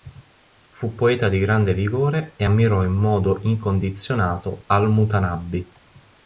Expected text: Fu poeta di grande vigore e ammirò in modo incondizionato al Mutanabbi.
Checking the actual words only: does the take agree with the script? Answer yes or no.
yes